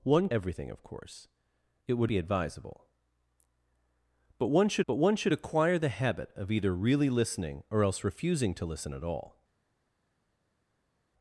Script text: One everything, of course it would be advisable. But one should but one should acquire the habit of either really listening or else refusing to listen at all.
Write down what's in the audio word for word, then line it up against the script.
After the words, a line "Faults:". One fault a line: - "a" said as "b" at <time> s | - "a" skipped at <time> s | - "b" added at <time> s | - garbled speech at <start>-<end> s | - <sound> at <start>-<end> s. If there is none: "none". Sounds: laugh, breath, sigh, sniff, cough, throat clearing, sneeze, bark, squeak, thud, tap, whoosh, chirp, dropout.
One everything, of course it would be advisable. But one should but one should acquire the habit of either really listening or else refusing to listen at all.
Faults:
none